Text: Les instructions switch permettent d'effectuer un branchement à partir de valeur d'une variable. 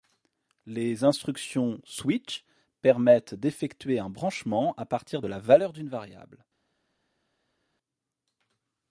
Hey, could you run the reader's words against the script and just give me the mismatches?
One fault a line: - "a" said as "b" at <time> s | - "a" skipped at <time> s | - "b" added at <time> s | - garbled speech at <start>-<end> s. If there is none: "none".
- "la" added at 5.3 s